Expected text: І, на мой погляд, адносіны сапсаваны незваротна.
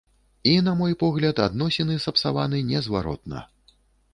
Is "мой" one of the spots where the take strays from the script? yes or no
no